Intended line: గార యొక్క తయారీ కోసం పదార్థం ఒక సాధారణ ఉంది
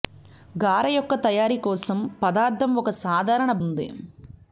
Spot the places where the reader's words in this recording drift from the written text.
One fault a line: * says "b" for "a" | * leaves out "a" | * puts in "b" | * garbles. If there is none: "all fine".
all fine